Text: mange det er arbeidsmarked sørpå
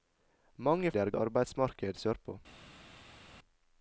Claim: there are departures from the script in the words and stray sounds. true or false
false